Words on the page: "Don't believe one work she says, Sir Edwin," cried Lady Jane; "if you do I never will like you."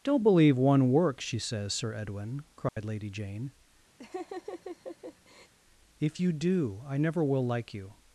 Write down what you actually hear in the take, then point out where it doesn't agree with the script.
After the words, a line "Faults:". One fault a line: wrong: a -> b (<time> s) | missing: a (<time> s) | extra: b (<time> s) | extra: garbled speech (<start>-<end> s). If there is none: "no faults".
"Don't believe one work she says, Sir Edwin," cried Lady Jane; "if you do I never will like you."
Faults:
no faults